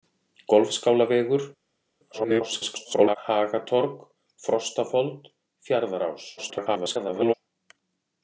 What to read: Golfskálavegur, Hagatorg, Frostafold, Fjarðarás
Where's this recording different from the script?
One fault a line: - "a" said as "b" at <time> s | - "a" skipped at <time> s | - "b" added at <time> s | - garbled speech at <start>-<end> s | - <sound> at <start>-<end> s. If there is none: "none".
- garbled speech at 2.1-3.2 s
- garbled speech at 6.4-7.3 s